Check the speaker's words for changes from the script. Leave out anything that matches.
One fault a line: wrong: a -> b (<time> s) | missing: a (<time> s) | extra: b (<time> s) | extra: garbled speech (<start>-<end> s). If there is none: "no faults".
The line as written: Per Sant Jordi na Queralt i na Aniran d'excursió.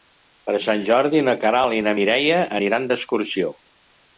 extra: Mireia (2.0 s)